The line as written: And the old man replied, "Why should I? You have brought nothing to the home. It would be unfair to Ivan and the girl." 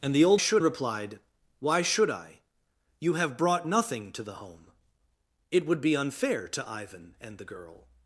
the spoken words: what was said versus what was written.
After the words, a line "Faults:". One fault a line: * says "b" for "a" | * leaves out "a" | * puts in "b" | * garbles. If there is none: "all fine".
And the old should replied, "Why should I? You have brought nothing to the home. It would be unfair to Ivan and the girl."
Faults:
* says "should" for "man"